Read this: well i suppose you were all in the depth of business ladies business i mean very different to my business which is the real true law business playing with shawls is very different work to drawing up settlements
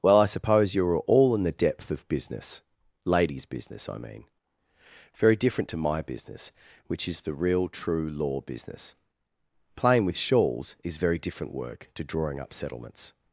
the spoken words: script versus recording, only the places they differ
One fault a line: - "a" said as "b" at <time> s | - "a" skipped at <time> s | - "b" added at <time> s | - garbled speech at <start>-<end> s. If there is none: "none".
- "were" said as "are" at 0.9 s